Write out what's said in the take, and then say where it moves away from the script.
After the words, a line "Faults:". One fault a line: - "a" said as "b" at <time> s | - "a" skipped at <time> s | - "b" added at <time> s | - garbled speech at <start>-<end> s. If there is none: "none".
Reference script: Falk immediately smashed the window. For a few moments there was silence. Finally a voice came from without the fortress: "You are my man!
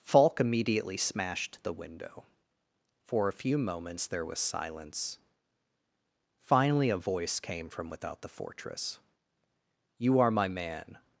Falk immediately smashed the window. For a few moments there was silence. Finally a voice came from without the fortress: "You are my man!
Faults:
none